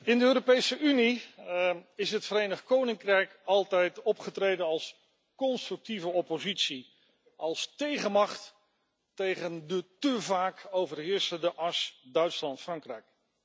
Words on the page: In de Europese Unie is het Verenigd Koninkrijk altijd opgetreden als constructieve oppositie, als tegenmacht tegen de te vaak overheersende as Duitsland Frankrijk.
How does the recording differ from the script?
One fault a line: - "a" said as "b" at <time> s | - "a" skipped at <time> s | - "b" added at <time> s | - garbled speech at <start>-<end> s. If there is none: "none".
none